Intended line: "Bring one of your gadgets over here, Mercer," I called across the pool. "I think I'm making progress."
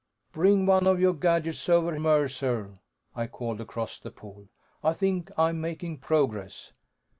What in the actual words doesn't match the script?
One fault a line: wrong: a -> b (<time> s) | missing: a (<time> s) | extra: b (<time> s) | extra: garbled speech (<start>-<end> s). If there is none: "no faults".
missing: here (1.9 s)